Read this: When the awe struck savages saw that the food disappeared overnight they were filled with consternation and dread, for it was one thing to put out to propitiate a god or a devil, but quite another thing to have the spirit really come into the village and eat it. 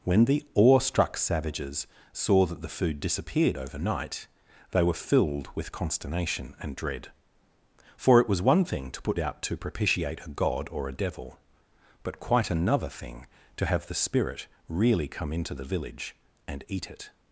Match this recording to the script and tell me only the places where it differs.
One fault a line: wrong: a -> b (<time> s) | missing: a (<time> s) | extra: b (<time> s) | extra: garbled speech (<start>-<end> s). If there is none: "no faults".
no faults